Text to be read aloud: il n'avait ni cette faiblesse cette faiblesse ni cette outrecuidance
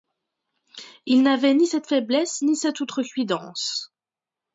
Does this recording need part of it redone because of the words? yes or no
yes